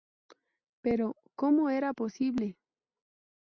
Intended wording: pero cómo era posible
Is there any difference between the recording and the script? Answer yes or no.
no